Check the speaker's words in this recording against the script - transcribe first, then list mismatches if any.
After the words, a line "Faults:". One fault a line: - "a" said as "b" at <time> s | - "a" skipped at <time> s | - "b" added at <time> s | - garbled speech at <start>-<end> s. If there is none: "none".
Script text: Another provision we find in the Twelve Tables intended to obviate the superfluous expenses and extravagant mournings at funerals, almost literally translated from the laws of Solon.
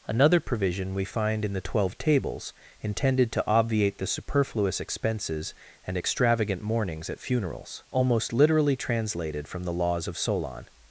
Another provision we find in the Twelve Tables intended to obviate the superfluous expenses and extravagant mournings at funerals, almost literally translated from the laws of Solon.
Faults:
none